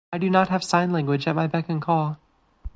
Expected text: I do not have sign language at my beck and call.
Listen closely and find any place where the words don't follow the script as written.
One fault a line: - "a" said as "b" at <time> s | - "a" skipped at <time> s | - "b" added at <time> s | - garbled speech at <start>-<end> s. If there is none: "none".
none